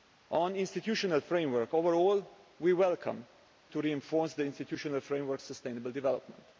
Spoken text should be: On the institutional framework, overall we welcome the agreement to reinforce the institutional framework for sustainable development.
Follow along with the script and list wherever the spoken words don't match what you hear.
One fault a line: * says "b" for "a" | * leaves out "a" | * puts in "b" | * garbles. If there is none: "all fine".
* leaves out "the agreement"
* leaves out "for"